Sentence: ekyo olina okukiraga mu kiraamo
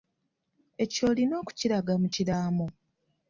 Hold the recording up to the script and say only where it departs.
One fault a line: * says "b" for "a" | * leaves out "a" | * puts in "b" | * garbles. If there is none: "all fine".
all fine